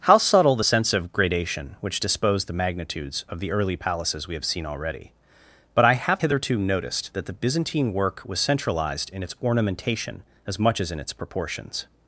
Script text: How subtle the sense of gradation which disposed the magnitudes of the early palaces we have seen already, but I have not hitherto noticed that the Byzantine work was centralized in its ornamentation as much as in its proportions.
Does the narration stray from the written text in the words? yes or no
yes